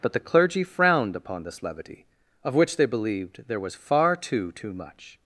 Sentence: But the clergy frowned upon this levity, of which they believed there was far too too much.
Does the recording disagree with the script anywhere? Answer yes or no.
no